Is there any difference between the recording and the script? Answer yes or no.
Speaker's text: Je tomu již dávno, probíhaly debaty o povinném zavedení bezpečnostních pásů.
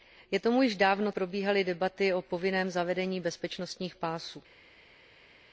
no